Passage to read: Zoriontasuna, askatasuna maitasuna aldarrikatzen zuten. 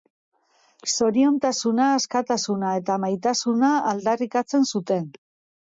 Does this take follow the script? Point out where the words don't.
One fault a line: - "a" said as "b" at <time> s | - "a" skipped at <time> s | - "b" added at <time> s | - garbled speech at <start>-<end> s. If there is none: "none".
- "eta" added at 2.8 s